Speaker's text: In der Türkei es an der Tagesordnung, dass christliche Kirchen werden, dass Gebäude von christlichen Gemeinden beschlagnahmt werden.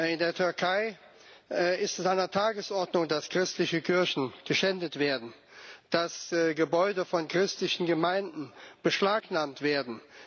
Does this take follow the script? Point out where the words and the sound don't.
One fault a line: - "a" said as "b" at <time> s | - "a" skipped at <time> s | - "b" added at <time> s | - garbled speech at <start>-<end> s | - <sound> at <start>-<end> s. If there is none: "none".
- "ist" added at 1.8 s
- "geschändet" added at 4.5 s